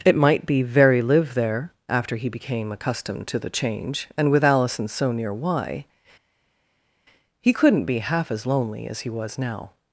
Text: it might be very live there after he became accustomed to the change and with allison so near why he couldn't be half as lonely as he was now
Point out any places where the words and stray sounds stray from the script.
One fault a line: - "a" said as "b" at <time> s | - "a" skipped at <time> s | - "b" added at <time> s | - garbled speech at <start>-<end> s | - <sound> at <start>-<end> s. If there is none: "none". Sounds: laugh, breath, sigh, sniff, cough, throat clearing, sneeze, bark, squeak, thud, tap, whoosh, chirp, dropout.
none